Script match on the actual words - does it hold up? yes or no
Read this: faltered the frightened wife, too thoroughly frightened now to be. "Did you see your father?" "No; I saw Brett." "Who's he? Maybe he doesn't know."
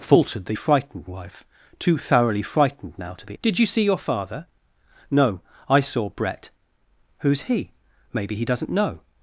yes